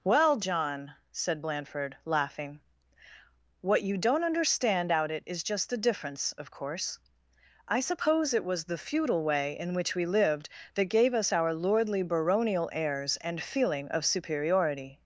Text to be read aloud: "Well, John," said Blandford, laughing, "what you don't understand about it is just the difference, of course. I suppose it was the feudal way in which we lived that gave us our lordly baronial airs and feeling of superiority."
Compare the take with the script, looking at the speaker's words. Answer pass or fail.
fail